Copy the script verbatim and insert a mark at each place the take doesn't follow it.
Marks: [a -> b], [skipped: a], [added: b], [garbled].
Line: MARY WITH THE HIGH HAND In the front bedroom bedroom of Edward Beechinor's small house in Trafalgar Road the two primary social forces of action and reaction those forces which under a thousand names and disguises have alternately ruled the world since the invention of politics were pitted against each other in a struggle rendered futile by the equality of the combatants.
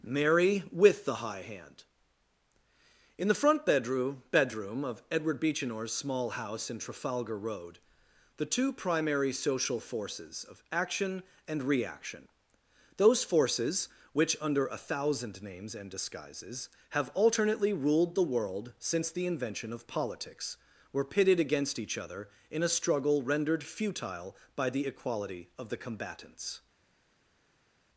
MARY WITH THE HIGH HAND In the front bedroom bedroom of Edward Beechinor's small house in Trafalgar Road the two primary social forces of action and reaction those forces which under a thousand names and disguises have alternately ruled the world since the invention of politics were pitted against each other in a struggle rendered futile by the equality of the combatants.